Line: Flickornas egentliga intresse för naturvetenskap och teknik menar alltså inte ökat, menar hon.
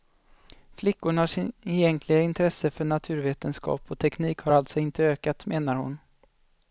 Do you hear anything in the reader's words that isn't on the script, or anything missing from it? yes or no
yes